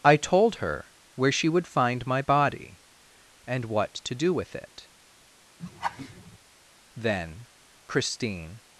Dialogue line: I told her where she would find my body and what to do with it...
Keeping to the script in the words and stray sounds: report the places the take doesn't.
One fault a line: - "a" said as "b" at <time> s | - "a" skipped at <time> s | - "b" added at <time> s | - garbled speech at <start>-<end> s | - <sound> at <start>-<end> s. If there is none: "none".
- laugh at 5.6-6.4 s
- "Then Christine" added at 7.0 s